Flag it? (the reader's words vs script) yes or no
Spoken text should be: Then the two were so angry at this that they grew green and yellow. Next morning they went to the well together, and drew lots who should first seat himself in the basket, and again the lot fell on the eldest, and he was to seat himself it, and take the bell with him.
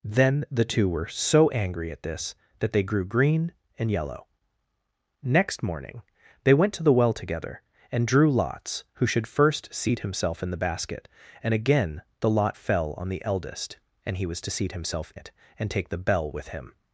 no